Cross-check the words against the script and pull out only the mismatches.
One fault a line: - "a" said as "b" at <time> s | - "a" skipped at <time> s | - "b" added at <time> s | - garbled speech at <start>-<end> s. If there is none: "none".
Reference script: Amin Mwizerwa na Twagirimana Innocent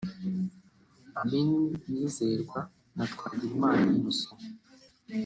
none